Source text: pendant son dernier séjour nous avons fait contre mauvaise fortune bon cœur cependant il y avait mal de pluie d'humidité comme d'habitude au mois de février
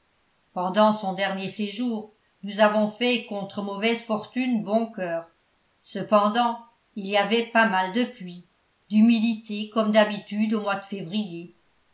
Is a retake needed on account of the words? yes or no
yes